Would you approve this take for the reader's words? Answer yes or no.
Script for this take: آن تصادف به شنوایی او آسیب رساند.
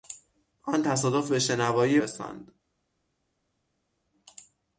no